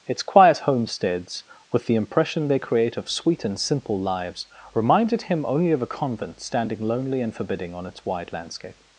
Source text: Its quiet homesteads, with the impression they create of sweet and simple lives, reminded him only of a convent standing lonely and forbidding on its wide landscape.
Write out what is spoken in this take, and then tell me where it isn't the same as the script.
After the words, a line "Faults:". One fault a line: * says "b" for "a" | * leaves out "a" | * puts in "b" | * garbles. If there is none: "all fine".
Its quiet homesteads, with the impression they create of sweet and simple lives, reminded him only of a convent standing lonely and forbidding on its wide landscape.
Faults:
all fine